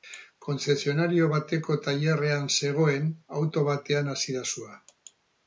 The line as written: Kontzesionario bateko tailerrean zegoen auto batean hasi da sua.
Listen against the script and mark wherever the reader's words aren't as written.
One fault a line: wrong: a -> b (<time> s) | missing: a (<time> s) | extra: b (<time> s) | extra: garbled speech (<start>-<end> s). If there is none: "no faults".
no faults